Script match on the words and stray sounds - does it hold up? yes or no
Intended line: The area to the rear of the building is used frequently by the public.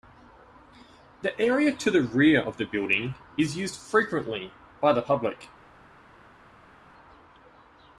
yes